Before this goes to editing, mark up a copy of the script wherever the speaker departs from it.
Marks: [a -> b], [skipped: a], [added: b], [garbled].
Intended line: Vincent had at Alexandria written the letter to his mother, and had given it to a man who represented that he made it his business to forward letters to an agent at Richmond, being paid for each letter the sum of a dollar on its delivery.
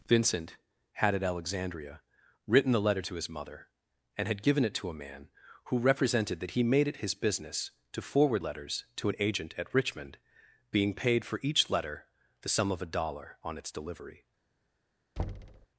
Vincent had at Alexandria written the letter to his mother, and had given it to a man who represented that he made it his business to forward letters to an agent at Richmond, being paid for each letter the sum of a dollar on its delivery.